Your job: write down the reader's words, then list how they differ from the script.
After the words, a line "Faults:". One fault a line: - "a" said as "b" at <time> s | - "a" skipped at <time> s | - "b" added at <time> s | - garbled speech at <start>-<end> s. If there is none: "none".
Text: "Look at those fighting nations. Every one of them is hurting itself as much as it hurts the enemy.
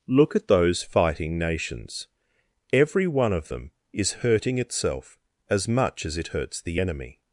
"Look at those fighting nations. Every one of them is hurting itself as much as it hurts the enemy.
Faults:
none